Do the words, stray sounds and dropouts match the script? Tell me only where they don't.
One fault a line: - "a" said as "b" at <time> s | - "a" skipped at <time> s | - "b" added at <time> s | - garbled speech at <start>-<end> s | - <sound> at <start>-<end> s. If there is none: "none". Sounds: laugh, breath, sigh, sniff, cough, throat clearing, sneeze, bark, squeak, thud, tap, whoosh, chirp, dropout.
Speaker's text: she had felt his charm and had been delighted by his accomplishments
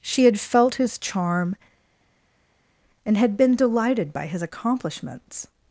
none